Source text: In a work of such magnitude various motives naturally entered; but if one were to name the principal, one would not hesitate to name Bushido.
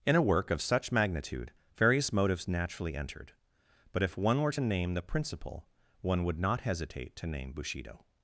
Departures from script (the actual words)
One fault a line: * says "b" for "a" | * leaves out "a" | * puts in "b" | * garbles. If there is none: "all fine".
all fine